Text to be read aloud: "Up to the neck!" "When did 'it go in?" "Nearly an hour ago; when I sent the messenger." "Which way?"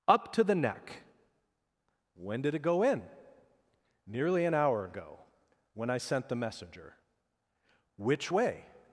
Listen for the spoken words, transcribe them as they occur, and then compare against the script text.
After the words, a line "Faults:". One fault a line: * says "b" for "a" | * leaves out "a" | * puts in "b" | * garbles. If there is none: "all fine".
"Up to the neck!" "When did 'it go in?" "Nearly an hour ago; when I sent the messenger." "Which way?"
Faults:
all fine